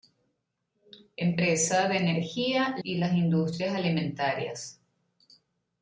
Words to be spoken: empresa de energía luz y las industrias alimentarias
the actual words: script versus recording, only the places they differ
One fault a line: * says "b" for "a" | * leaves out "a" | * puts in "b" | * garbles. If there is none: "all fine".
* leaves out "luz"